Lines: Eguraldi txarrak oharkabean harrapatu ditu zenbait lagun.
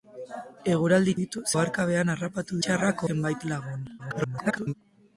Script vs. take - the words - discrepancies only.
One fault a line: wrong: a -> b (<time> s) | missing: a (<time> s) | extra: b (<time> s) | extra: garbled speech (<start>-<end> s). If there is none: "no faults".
wrong: txarrak -> ditu (1.2 s)
wrong: ditu -> txarrak (2.7 s)
extra: garbled speech (4.0-4.7 s)